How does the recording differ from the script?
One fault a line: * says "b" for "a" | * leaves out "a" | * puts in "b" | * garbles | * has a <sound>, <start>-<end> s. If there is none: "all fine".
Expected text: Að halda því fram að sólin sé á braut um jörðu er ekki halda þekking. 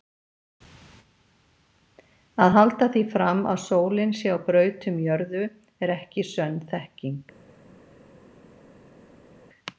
* says "sönn" for "halda"